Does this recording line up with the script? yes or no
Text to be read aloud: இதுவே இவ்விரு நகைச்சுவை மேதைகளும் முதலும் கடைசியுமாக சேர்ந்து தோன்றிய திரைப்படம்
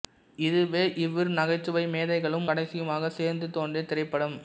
no